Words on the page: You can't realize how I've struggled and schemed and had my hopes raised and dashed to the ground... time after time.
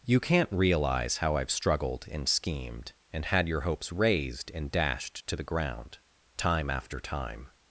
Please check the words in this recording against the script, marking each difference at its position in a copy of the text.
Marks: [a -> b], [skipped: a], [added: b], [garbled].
You can't realize how I've struggled and schemed and had [my -> your] hopes raised and dashed to the ground... time after time.